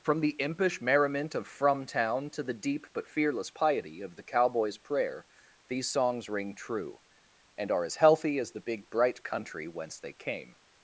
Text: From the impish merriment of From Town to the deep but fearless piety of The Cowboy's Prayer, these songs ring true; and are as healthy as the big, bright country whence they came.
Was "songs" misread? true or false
false